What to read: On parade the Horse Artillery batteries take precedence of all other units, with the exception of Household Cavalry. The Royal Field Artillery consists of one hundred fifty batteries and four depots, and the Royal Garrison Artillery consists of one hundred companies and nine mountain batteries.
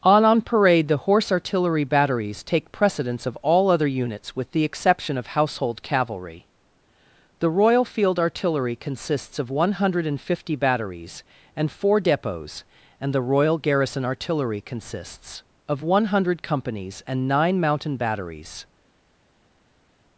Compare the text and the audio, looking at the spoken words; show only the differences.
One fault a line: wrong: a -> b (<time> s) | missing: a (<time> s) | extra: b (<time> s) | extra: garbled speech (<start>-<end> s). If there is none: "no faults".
extra: on (0.2 s)